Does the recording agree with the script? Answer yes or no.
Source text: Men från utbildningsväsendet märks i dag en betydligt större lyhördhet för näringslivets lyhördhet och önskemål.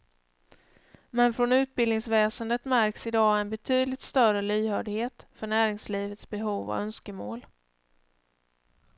no